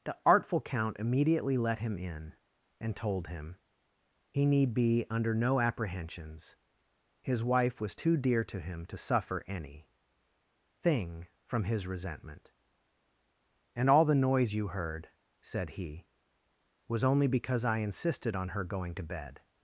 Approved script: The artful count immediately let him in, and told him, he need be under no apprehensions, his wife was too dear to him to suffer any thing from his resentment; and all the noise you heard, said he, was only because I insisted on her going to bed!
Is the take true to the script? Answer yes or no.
yes